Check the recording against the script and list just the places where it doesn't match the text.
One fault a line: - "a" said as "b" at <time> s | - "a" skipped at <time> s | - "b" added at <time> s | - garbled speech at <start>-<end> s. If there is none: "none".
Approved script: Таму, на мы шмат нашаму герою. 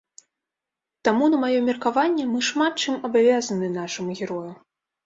- "маё меркаванне" added at 1.4 s
- "чым абавязаны" added at 2.9 s